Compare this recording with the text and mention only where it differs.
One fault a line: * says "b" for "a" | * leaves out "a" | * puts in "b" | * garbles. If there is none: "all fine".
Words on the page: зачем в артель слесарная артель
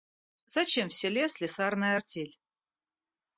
* says "селе" for "артель"